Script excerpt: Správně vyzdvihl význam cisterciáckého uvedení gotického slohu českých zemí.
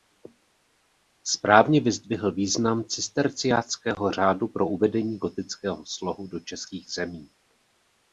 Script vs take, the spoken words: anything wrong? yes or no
yes